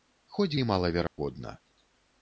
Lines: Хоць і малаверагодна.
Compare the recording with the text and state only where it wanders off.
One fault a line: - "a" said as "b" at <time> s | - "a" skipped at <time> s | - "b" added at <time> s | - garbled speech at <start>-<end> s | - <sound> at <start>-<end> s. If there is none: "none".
- dropout at 1.1-1.2 s